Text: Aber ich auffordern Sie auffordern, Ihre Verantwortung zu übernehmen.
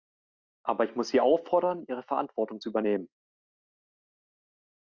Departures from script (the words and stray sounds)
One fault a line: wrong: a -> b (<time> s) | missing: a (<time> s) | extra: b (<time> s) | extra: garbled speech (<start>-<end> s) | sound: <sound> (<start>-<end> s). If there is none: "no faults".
wrong: auffordern -> muss (0.9 s)